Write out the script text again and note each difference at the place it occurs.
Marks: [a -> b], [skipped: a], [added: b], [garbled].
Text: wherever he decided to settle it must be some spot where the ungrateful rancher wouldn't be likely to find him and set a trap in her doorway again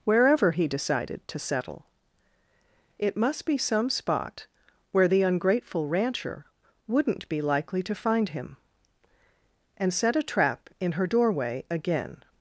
wherever he decided to settle it must be some spot where the ungrateful rancher wouldn't be likely to find him and set a trap in her doorway again